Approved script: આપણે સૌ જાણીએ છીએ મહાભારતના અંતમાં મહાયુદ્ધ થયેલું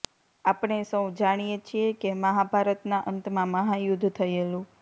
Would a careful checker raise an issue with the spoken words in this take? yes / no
yes